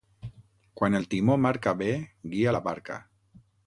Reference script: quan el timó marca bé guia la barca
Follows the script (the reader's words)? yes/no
yes